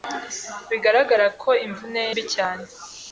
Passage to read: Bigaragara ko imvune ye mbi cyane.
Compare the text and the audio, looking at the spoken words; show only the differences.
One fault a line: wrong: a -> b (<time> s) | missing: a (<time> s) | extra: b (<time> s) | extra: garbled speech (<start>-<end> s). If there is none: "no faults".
no faults